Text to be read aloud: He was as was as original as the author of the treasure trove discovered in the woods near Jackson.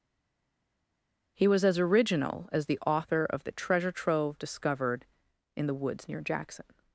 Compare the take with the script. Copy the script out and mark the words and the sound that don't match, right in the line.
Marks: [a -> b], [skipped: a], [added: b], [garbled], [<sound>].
He was as [skipped: was as] original as the author of the treasure trove discovered in the woods near Jackson.